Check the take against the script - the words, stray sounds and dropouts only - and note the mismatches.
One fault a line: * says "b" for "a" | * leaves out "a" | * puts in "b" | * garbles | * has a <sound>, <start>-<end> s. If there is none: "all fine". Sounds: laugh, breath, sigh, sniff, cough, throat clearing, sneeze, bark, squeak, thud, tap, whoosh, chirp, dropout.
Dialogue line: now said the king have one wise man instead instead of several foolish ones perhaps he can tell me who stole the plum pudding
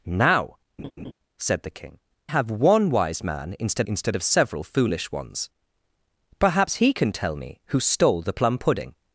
* has a laugh, 0.8-1.1 s